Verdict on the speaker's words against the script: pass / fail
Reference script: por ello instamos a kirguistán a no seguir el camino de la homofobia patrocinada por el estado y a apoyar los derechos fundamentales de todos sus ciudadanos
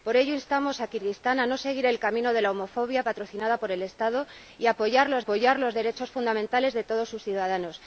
fail